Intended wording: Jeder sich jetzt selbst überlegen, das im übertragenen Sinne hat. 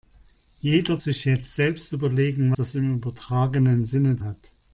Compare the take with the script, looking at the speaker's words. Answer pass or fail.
pass